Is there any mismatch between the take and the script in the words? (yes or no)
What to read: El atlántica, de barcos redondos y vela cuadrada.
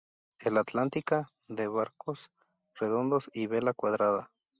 no